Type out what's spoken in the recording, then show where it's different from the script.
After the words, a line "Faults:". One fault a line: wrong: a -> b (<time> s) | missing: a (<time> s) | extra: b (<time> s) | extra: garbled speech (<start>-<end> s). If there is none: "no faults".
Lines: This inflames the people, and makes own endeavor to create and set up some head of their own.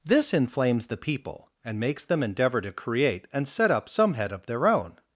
This inflames the people, and makes them endeavor to create and set up some head of their own.
Faults:
wrong: own -> them (2.0 s)